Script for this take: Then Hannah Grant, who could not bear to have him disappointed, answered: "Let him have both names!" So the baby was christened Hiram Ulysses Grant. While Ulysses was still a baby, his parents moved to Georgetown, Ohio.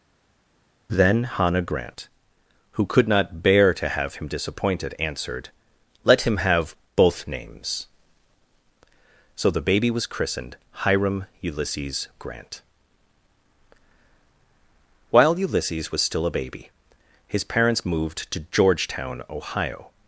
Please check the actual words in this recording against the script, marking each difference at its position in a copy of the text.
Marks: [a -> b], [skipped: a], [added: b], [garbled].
Then Hannah Grant, who could not bear to have him disappointed, answered: "Let him have both names!" So the baby was christened Hiram Ulysses Grant. While Ulysses was still a baby, his parents moved to Georgetown, Ohio.